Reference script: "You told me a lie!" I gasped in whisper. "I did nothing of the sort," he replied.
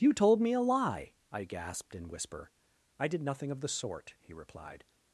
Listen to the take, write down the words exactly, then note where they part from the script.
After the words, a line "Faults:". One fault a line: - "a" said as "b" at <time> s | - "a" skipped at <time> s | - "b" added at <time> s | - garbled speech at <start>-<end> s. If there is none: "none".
"You told me a lie!" I gasped in whisper. "I did nothing of the sort," he replied.
Faults:
none